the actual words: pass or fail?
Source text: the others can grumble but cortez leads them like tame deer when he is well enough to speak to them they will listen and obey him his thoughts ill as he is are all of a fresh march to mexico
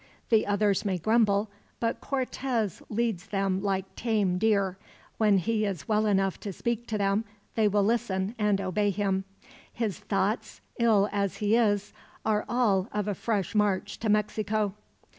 fail